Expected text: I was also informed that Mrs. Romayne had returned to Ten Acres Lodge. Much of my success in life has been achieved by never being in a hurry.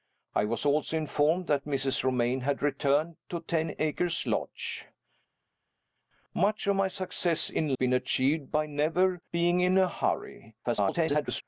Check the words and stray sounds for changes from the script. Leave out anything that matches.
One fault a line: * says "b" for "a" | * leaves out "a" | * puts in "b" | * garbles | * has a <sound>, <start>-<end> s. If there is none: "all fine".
* leaves out "life has"
* garbles